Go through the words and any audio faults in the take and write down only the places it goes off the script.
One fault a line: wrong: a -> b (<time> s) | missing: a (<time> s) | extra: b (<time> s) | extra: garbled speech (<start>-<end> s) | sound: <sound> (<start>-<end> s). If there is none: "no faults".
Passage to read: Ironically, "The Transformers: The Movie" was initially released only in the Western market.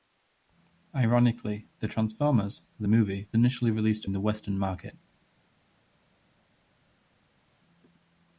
missing: was (3.3 s)
missing: only (4.1 s)